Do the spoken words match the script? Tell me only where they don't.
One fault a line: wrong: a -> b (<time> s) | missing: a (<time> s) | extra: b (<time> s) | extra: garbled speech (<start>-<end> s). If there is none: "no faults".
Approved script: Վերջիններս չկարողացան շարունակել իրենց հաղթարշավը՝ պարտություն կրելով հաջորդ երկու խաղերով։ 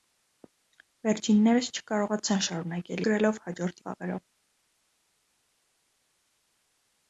missing: իրենց հաղթարշավը պարտություն (3.0 s)
missing: երկու (3.8 s)